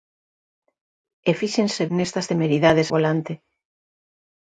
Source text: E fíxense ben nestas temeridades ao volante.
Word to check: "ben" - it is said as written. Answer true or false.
false